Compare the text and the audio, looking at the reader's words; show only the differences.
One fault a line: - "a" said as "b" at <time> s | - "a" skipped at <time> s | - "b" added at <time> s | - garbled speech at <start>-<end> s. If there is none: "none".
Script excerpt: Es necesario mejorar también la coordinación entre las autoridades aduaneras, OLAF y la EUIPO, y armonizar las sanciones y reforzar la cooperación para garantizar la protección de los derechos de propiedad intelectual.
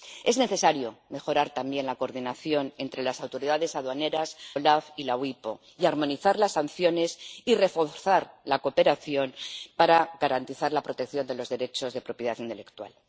none